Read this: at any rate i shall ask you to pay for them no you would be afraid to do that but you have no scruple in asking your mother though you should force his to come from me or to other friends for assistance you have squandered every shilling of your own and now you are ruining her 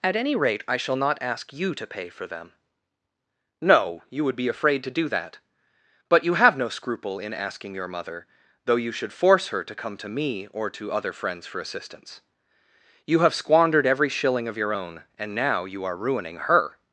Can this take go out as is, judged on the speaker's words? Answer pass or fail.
fail